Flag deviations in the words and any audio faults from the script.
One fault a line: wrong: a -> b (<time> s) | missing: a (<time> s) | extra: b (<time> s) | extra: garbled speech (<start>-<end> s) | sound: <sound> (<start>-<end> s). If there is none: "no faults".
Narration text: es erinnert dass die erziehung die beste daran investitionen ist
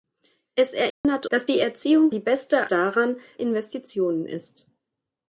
sound: dropout (0.9-1.0 s)